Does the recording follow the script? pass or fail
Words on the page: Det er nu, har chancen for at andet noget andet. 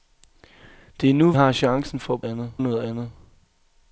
pass